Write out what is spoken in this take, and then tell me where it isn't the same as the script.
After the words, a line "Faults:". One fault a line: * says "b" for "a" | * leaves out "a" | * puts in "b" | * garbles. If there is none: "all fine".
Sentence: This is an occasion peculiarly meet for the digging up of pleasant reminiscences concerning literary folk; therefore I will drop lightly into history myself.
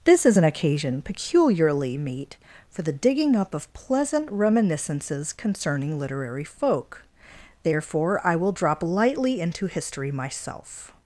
This is an occasion peculiarly meet for the digging up of pleasant reminiscences concerning literary folk; therefore I will drop lightly into history myself.
Faults:
all fine